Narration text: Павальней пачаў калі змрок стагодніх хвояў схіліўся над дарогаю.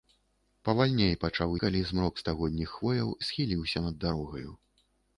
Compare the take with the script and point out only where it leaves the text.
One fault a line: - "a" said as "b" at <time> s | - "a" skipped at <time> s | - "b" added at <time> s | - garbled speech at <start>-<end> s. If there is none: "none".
none